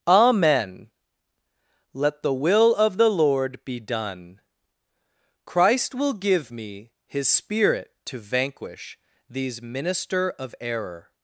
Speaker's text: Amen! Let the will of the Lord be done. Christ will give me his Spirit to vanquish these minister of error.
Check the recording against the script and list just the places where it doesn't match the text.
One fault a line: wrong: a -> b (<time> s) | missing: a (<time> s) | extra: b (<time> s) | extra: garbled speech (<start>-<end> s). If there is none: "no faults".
no faults